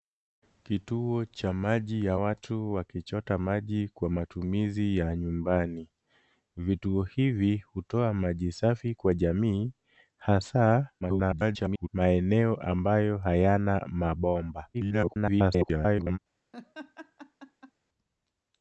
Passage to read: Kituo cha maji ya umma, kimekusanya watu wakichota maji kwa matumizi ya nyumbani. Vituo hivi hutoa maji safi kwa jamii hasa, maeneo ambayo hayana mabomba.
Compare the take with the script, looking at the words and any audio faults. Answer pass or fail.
fail